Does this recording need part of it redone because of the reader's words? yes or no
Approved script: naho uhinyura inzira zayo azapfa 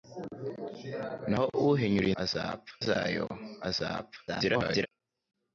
yes